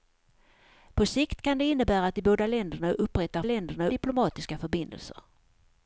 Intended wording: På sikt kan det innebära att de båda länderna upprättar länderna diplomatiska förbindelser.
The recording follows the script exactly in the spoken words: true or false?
true